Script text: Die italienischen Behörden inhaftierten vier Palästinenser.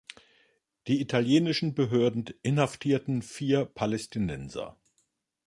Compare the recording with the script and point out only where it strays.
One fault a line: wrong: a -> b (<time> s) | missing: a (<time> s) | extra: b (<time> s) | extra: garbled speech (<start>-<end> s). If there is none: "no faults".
no faults